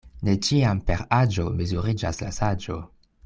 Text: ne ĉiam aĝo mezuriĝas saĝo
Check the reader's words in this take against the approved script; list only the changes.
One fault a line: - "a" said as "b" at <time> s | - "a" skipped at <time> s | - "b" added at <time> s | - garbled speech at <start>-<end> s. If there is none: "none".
- "per" added at 0.9 s
- "la" added at 2.2 s